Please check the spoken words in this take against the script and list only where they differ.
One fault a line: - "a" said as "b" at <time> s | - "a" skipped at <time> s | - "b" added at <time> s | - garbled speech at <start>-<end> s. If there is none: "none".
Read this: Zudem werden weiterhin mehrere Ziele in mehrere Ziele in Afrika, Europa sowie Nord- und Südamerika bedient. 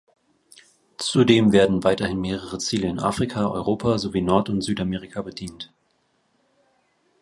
- "mehrere Ziele in" skipped at 3.0 s